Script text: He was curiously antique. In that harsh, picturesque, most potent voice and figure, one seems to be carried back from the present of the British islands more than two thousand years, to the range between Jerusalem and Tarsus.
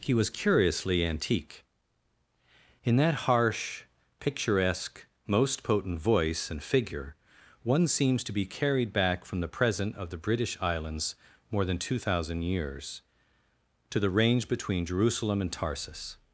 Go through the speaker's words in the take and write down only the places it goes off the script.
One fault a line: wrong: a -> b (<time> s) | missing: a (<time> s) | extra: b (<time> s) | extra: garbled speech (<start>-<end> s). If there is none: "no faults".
no faults